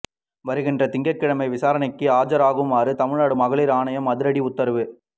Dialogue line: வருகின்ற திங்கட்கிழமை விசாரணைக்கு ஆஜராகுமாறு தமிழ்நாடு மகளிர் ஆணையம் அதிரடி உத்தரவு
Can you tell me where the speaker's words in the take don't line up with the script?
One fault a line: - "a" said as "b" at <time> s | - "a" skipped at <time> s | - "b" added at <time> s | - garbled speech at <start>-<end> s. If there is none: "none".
none